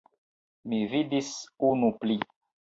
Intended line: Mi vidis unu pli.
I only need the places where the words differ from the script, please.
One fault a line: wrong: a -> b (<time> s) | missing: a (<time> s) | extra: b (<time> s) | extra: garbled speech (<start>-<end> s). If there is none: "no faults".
no faults